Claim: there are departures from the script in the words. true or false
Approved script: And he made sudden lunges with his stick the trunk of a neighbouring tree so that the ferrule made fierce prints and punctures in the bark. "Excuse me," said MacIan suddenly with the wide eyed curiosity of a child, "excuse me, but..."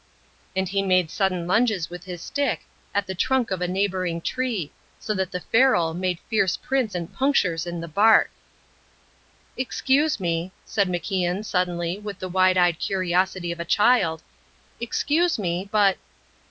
true